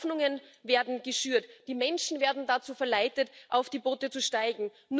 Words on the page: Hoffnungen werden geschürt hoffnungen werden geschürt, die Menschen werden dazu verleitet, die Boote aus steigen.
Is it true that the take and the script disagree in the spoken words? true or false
true